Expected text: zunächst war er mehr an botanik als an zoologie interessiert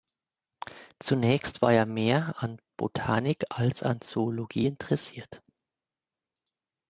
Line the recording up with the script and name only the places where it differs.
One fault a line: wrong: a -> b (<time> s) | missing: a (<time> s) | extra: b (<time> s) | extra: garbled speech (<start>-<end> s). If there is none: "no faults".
no faults